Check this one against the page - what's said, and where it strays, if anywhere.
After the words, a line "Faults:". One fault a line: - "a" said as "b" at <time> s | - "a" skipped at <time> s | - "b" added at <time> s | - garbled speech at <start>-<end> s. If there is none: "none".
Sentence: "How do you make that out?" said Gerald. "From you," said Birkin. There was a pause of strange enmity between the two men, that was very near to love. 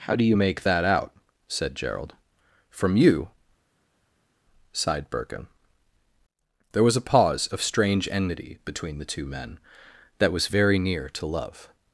"How do you make that out?" said Gerald. "From you," sighed Birkin. There was a pause of strange enmity between the two men, that was very near to love.
Faults:
- "said" said as "sighed" at 4.7 s